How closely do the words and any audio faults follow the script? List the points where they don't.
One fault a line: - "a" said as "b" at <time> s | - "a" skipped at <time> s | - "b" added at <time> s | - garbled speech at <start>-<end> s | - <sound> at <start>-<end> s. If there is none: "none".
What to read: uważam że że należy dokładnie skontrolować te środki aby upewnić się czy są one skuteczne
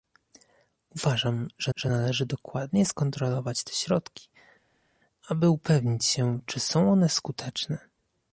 none